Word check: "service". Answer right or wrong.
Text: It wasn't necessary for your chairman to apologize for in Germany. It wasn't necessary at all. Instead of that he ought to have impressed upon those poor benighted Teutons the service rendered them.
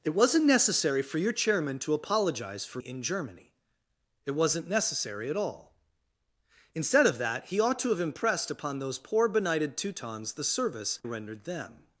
right